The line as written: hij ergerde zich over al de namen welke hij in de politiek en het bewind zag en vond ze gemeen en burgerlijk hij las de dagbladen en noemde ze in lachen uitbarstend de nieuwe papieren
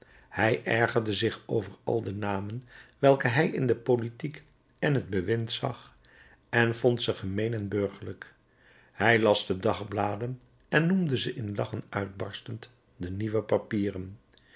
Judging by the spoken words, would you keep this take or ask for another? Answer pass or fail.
pass